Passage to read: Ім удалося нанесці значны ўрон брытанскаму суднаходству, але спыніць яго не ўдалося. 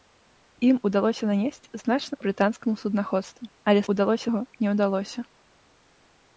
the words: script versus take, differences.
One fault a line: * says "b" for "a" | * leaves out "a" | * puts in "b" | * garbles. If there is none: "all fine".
* leaves out "ўрон"
* says "удалося" for "спыніць"